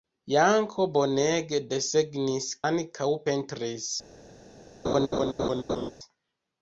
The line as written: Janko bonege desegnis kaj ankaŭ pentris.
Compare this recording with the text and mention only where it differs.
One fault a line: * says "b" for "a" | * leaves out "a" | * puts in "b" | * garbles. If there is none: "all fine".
* leaves out "kaj"